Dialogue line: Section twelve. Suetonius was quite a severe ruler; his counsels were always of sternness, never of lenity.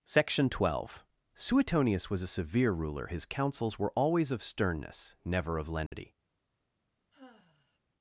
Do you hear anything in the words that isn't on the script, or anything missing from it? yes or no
yes